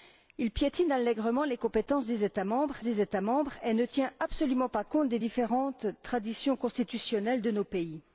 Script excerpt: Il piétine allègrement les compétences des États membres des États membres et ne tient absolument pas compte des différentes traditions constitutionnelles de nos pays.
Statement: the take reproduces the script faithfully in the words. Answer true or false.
true